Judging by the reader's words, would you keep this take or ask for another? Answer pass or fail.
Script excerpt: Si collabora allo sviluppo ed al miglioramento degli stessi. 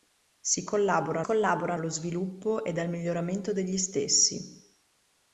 fail